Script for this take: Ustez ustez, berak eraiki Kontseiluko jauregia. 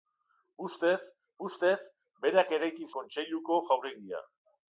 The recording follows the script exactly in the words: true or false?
true